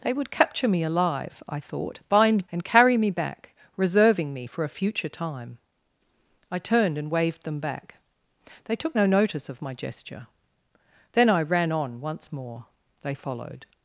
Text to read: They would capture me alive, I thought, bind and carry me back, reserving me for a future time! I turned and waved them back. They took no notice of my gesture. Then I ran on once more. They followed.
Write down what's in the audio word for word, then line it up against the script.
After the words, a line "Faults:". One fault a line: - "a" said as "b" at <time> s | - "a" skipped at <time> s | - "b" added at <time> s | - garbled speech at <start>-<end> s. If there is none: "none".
They would capture me alive, I thought, bind and carry me back, reserving me for a future time! I turned and waved them back. They took no notice of my gesture. Then I ran on once more. They followed.
Faults:
none